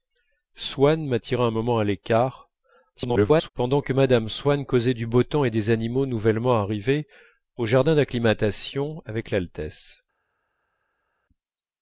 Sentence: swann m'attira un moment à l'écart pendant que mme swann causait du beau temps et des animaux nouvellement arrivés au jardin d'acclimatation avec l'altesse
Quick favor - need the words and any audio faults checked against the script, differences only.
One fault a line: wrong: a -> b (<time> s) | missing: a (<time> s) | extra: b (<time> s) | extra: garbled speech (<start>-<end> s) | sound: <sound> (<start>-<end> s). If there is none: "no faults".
extra: garbled speech (2.9-3.5 s)